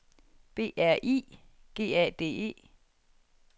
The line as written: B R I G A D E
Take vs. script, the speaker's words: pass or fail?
pass